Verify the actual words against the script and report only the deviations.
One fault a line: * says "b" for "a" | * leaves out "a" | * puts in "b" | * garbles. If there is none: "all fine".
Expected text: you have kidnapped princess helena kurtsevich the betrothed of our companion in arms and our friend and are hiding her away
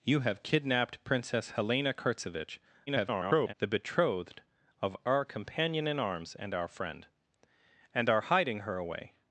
* garbles